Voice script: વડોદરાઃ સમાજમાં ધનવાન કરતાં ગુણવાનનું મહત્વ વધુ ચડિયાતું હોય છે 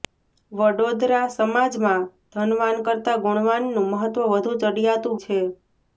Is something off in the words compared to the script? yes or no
yes